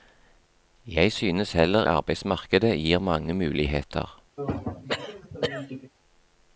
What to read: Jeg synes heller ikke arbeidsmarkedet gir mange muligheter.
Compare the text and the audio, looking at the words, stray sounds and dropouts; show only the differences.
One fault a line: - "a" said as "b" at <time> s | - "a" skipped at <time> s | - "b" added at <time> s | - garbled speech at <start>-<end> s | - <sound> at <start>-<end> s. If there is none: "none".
- "ikke" skipped at 1.9 s
- throat clearing at 4.4-5.9 s